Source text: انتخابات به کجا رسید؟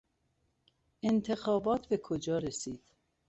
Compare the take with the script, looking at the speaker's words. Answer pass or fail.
pass